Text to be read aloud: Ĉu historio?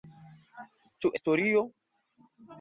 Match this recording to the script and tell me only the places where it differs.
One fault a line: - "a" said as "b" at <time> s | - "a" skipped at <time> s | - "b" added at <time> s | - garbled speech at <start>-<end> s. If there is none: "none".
none